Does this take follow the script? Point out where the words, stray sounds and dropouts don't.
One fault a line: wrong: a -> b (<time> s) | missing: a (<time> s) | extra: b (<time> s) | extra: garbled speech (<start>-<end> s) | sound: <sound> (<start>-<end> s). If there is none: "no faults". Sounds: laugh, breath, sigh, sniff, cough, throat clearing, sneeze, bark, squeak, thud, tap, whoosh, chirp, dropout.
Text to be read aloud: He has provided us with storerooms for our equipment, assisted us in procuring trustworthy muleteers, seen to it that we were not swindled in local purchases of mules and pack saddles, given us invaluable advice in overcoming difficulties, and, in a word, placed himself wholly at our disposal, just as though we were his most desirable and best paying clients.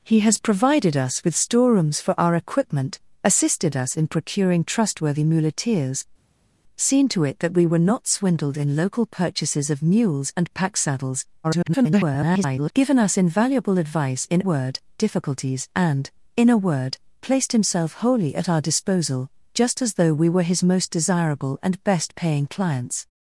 extra: garbled speech (11.4-12.7 s)
wrong: overcoming -> word (14.4 s)